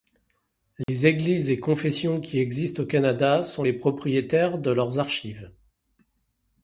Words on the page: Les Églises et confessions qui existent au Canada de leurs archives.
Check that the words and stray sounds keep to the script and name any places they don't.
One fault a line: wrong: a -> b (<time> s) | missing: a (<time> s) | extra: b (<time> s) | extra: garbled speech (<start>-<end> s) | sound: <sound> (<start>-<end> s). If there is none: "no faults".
sound: dropout (0.8-0.9 s)
extra: sont les propriétaires (3.4 s)